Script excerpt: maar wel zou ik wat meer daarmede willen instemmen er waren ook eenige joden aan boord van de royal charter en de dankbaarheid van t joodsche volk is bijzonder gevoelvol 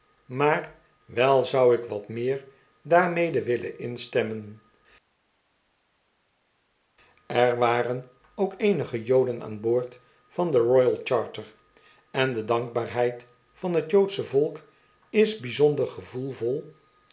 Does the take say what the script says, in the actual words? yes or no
yes